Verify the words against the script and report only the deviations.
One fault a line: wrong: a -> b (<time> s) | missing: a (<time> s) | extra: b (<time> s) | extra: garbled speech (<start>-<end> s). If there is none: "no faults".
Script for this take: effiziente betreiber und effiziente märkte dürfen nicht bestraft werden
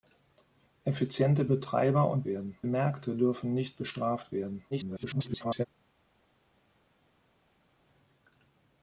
wrong: effiziente -> werden (2.2 s)
extra: garbled speech (4.7-5.7 s)